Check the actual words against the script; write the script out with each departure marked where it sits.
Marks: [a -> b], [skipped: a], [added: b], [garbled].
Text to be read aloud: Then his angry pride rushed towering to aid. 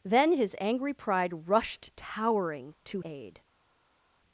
Then his angry pride rushed towering to aid.